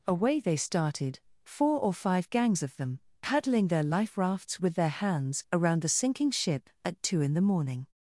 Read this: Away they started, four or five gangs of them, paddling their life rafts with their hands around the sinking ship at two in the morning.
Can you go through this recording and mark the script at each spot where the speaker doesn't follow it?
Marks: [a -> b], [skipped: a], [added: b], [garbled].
Away they started, four or five gangs of them, paddling their life rafts with their hands around the sinking ship at two in the morning.